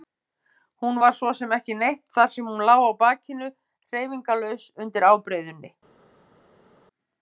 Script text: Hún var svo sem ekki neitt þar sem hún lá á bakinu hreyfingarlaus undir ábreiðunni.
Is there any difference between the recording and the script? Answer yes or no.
no